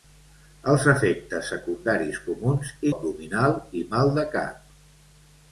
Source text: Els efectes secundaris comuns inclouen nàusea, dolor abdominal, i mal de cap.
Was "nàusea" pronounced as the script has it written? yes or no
no